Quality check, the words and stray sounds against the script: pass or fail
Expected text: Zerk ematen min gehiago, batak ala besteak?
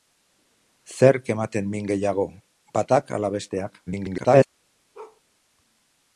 fail